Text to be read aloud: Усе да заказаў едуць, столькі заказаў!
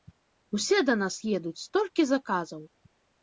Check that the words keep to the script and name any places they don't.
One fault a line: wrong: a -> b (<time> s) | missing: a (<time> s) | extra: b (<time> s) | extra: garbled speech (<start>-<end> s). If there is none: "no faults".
wrong: заказаў -> нас (1.0 s)